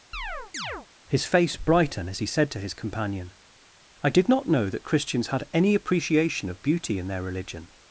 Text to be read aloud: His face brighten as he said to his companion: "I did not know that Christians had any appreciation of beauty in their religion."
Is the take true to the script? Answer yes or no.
yes